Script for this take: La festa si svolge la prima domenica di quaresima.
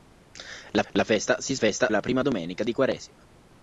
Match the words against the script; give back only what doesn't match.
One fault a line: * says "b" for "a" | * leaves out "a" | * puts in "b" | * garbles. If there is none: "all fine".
* puts in "la"
* says "festa" for "svolge"